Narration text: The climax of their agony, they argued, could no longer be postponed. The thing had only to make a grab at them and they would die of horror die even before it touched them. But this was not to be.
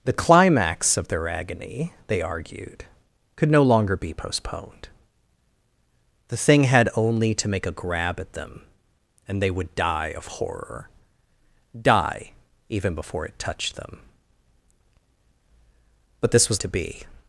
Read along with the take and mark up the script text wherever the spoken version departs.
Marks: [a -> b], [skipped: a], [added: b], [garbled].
The climax of their agony, they argued, could no longer be postponed. The thing had only to make a grab at them and they would die of horror die even before it touched them. But this was [skipped: not] to be.